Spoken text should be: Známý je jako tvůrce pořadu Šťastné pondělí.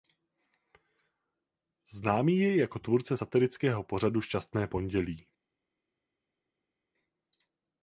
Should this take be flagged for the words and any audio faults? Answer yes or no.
yes